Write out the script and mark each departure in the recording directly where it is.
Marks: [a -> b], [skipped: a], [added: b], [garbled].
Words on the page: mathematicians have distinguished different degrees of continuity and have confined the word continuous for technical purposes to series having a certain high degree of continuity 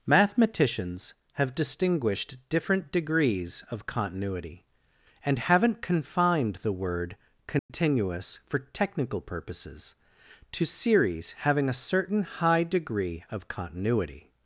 mathematicians have distinguished different degrees of continuity and [have -> haven't] confined the word continuous for technical purposes to series having a certain high degree of continuity